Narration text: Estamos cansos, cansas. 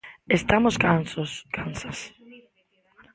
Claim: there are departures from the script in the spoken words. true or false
false